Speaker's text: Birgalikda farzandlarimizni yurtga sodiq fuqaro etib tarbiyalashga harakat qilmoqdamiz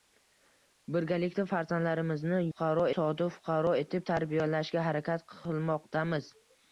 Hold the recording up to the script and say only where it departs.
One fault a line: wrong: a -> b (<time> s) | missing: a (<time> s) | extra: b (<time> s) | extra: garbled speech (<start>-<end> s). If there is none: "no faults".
wrong: yurtga -> fuqaro (2.5 s)